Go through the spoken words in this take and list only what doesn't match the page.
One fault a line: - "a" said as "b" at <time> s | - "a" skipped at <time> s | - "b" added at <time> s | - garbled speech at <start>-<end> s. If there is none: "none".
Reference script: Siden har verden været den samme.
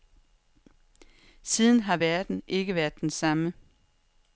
- "ikke" added at 2.5 s